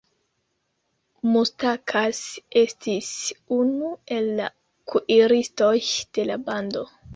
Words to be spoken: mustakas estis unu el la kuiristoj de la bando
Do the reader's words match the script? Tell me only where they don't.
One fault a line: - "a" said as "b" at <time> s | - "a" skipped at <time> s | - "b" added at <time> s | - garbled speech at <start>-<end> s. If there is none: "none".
none